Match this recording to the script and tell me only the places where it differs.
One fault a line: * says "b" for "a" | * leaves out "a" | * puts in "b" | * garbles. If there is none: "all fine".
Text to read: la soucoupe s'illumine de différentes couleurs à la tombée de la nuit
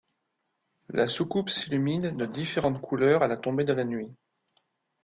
all fine